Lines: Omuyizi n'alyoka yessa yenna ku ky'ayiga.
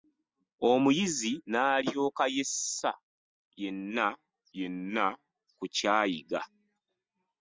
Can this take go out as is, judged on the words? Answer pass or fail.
fail